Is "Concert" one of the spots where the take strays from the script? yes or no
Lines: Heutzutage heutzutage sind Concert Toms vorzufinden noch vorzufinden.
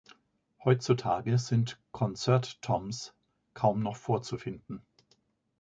no